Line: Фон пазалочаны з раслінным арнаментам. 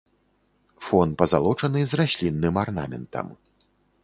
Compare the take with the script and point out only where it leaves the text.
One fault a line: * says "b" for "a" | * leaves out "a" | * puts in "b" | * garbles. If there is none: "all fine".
all fine